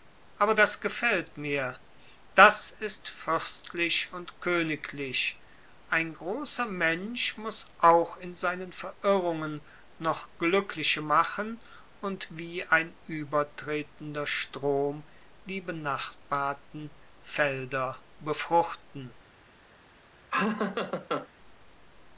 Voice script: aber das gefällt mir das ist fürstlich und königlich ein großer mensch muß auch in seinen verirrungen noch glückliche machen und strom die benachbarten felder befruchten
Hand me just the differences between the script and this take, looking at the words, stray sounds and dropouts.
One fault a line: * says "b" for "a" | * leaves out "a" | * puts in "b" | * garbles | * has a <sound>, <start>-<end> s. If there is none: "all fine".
* puts in "wie ein übertretender"
* has a laugh, 20.3-21.3 s